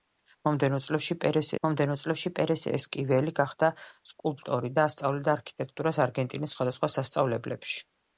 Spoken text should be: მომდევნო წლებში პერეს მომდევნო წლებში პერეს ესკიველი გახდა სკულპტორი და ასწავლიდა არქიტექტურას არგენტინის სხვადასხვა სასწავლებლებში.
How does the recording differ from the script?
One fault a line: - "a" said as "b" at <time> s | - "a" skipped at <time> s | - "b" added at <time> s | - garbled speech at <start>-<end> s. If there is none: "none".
none